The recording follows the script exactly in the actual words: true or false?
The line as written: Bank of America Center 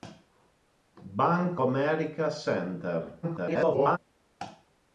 false